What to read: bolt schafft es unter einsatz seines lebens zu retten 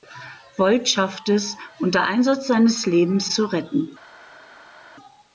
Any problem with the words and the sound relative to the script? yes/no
no